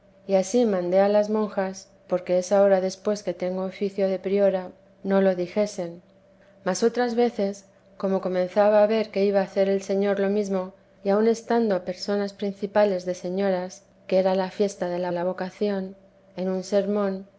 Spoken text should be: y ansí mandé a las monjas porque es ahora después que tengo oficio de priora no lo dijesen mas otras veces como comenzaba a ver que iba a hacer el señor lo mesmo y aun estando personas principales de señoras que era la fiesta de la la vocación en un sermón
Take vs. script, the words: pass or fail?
pass